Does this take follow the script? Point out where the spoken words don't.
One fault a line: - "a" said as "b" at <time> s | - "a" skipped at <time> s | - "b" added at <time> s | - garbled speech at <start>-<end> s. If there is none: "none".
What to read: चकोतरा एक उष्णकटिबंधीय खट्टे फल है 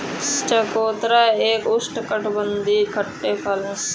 none